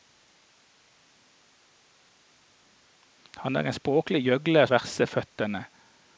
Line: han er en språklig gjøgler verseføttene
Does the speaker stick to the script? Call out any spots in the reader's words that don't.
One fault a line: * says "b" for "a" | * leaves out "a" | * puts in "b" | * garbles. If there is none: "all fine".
all fine